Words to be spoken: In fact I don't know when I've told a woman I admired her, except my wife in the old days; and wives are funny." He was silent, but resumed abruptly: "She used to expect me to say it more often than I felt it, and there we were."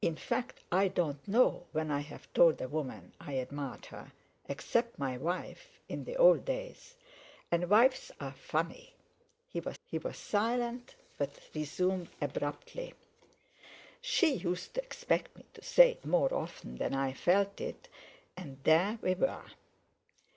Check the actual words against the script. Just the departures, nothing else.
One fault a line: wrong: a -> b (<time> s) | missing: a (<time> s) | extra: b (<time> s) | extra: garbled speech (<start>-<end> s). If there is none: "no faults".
extra: he was (9.8 s)